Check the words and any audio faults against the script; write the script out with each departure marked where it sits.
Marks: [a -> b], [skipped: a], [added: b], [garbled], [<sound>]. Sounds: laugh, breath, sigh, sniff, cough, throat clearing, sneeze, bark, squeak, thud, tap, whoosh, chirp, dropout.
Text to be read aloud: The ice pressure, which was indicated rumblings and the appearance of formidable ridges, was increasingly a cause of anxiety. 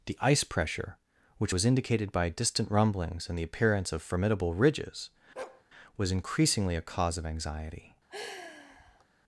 The ice pressure, which was indicated [added: by distant] rumblings and the appearance of formidable ridges, [bark] was increasingly a cause of anxiety. [sigh]